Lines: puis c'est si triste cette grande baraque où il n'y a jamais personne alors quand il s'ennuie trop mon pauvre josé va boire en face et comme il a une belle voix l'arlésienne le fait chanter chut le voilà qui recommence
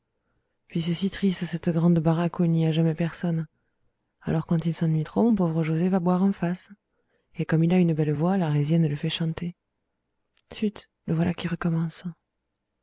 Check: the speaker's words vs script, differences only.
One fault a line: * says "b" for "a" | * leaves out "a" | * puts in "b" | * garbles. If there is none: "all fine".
all fine